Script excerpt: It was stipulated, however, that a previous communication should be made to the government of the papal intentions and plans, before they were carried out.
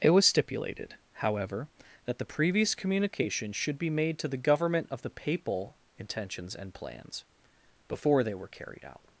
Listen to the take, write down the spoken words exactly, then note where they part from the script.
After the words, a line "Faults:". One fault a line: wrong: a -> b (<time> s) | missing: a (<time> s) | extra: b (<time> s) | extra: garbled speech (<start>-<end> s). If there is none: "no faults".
It was stipulated, however, that the previous communication should be made to the government of the papal intentions and plans, before they were carried out.
Faults:
wrong: a -> the (2.2 s)